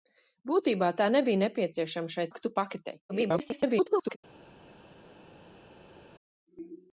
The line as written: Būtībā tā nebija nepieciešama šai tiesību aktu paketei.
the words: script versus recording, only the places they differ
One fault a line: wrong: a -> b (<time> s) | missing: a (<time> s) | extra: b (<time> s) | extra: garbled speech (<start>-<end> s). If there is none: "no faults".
missing: tiesību (2.3 s)
extra: garbled speech (3.1-4.2 s)